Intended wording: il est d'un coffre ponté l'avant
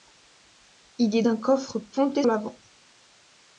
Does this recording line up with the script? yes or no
yes